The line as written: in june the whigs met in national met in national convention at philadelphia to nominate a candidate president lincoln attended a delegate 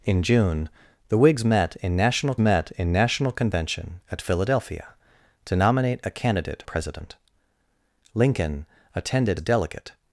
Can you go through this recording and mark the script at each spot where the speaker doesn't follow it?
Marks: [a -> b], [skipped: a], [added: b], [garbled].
in june the whigs met in national met in national convention at philadelphia to nominate a candidate president lincoln attended a delegate